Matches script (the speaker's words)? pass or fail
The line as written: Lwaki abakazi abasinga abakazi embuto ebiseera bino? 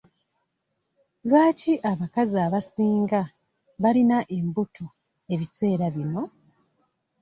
fail